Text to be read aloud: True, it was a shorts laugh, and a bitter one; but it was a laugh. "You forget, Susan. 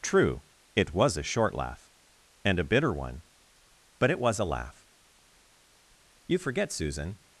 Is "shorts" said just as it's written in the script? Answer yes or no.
no